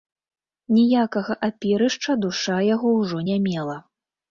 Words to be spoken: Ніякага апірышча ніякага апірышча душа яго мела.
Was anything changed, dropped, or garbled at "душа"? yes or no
yes